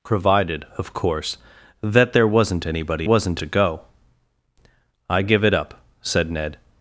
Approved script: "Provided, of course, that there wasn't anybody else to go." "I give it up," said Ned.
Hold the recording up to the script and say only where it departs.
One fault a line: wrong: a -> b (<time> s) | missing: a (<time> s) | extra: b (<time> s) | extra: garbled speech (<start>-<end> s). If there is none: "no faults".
wrong: else -> wasn't (3.0 s)